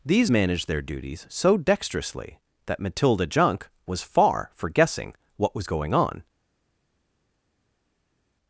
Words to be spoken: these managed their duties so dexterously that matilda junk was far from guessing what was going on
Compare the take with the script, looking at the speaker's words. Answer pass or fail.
fail